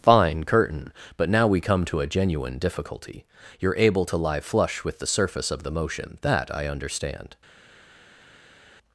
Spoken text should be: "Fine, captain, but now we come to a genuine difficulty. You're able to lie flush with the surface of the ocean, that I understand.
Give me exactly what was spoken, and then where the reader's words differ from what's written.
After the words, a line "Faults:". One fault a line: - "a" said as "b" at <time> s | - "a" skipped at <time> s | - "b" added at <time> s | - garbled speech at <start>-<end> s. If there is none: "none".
"Fine, curtain, but now we come to a genuine difficulty. You're able to lie flush with the surface of the motion, that I understand.
Faults:
- "captain" said as "curtain" at 0.5 s
- "ocean" said as "motion" at 5.7 s